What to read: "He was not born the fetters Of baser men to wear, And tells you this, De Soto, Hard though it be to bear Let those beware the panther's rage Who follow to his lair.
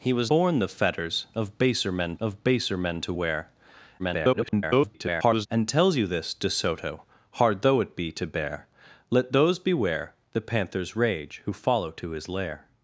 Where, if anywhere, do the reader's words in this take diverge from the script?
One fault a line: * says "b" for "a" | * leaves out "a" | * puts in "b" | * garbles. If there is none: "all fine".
* leaves out "not"
* puts in "Of baser men"
* garbles